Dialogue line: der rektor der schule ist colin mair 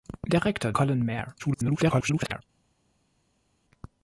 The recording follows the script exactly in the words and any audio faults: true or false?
false